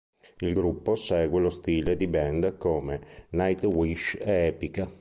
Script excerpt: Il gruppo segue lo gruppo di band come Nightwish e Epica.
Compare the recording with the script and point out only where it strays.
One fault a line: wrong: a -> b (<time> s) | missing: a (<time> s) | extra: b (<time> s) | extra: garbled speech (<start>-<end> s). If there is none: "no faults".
wrong: gruppo -> stile (1.5 s)